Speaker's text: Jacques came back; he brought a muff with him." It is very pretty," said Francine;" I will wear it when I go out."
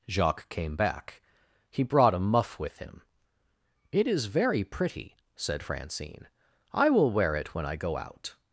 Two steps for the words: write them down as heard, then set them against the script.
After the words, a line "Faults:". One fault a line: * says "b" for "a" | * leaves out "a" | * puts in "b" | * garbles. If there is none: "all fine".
Jacques came back; he brought a muff with him." It is very pretty," said Francine;" I will wear it when I go out."
Faults:
all fine